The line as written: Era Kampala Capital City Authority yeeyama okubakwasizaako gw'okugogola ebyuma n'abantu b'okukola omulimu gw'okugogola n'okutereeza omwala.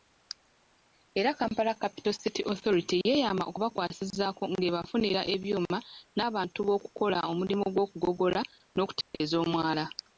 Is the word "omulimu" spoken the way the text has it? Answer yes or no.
yes